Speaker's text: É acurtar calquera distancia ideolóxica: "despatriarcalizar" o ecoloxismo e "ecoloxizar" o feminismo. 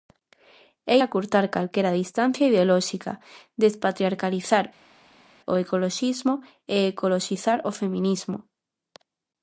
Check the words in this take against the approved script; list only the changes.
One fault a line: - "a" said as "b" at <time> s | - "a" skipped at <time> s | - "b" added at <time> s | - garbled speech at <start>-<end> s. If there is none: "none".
none